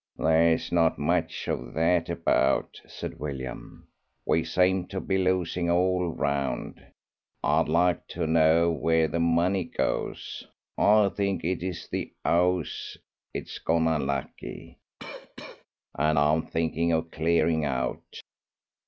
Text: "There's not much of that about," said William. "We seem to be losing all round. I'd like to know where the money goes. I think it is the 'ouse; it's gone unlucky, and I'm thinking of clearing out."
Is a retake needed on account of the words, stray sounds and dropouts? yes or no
yes